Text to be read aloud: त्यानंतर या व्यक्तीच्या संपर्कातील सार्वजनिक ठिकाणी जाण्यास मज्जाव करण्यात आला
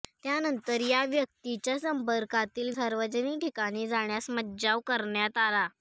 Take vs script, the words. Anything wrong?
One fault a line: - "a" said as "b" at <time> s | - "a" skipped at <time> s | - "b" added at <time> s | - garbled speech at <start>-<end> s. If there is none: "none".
none